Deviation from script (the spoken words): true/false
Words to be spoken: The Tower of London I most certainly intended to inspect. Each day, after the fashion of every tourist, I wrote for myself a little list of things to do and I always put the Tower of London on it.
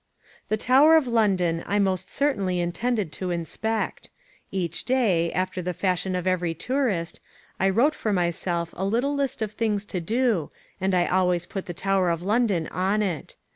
false